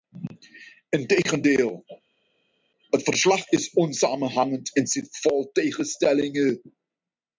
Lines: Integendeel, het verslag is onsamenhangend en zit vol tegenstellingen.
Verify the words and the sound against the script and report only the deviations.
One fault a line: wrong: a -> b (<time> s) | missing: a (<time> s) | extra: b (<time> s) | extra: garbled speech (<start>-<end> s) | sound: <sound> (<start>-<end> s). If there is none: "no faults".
no faults